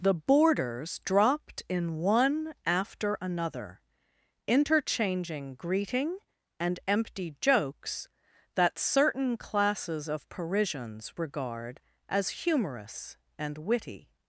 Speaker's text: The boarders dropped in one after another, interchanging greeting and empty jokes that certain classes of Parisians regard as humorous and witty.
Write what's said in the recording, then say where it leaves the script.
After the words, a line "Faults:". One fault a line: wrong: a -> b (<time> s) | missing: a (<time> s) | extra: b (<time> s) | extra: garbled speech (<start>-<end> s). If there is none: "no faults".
The boarders dropped in one after another, interchanging greeting and empty jokes that certain classes of Parisians regard as humorous and witty.
Faults:
no faults